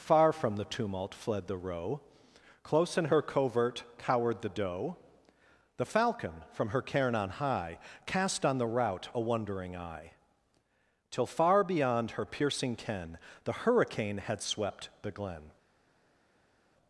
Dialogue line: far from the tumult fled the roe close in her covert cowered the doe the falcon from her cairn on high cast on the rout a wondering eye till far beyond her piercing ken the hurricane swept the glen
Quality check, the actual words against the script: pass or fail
fail